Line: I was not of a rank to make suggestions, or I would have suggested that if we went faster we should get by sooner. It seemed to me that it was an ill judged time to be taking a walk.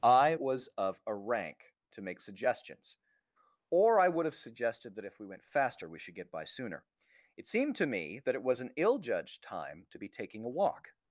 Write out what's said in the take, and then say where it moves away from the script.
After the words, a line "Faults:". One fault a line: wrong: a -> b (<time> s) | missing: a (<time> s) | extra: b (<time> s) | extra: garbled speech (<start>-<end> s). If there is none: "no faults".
I was of a rank to make suggestions, or I would have suggested that if we went faster we should get by sooner. It seemed to me that it was an ill judged time to be taking a walk.
Faults:
missing: not (0.7 s)